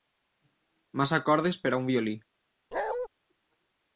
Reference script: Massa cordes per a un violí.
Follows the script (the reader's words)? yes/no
yes